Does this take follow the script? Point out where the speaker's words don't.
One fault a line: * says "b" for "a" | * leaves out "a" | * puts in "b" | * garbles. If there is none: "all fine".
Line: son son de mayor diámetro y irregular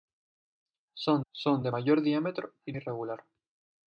all fine